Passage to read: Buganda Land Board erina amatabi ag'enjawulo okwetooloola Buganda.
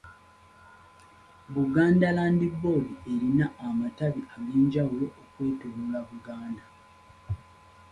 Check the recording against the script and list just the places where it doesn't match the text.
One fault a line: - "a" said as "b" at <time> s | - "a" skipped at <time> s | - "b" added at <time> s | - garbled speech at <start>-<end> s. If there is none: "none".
none